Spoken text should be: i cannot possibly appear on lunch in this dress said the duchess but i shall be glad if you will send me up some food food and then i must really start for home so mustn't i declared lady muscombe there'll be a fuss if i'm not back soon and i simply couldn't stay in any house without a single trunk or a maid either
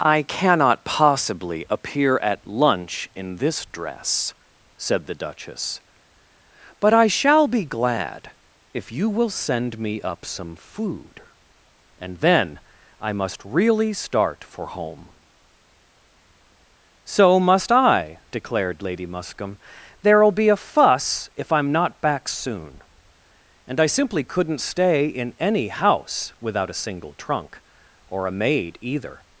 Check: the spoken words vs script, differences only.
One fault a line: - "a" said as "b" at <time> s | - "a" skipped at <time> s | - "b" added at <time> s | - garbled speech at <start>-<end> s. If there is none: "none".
- "on" said as "at" at 2.2 s
- "food" skipped at 11.2 s
- "mustn't" said as "must" at 17.4 s